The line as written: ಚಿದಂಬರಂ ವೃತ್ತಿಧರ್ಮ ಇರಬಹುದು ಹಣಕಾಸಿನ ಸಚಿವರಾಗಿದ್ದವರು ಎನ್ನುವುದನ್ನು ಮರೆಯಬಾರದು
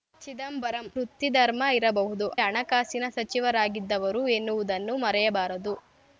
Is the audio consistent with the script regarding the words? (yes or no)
yes